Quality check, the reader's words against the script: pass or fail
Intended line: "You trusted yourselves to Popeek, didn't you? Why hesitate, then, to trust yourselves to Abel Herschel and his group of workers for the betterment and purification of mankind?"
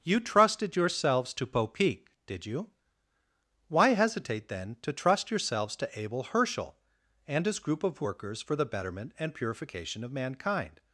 fail